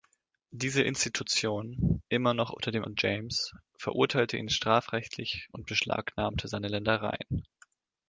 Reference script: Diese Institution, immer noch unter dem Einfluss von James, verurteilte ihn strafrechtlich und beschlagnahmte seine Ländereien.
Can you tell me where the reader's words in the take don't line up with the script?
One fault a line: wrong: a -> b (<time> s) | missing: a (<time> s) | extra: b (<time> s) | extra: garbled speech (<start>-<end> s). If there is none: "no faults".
missing: Einfluss (2.9 s)